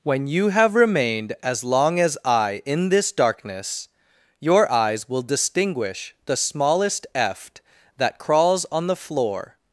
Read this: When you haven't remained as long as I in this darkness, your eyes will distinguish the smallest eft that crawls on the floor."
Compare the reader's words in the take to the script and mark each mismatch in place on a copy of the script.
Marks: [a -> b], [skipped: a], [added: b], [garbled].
When you [haven't -> have] remained as long as I in this darkness, your eyes will distinguish the smallest eft that crawls on the floor."